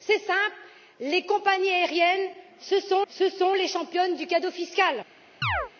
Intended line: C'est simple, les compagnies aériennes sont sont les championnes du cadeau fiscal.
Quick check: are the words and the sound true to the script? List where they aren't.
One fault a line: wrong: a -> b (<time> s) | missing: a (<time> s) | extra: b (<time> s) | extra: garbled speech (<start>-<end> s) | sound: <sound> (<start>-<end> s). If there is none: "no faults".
sound: chirp (5.4-5.7 s)